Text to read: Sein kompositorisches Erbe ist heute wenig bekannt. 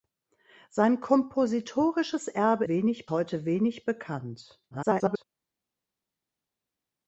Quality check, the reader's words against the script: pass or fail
fail